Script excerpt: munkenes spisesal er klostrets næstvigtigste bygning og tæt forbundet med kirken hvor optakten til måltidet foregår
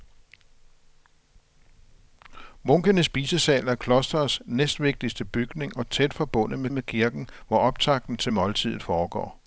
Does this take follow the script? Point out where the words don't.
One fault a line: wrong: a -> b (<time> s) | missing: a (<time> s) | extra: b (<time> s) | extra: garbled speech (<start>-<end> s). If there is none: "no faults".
extra: med (6.7 s)